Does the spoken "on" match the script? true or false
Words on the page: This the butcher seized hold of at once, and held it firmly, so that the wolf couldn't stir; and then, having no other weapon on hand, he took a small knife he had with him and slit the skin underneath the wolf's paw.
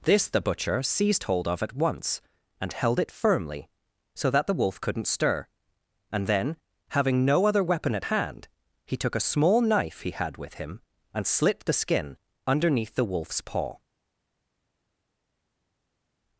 false